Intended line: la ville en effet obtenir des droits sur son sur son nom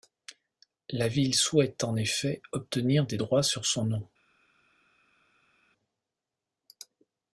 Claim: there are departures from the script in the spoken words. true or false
true